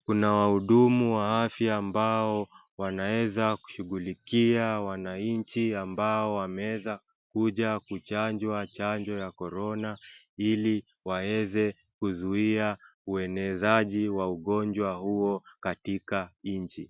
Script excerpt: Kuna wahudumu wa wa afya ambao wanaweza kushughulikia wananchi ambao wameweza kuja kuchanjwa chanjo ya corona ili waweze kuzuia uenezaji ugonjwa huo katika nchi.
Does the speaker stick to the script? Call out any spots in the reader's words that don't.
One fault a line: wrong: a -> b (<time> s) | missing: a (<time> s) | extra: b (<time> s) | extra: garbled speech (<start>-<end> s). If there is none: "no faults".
missing: wa (1.4 s)
extra: wa (14.1 s)